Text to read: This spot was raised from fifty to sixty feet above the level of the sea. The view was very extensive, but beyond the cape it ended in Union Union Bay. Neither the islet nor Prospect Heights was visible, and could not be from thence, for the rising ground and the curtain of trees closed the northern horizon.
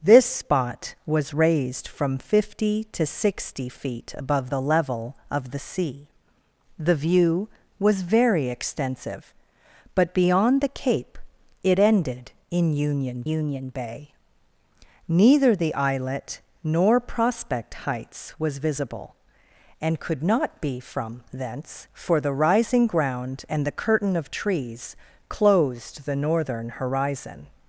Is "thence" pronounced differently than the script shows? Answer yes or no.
no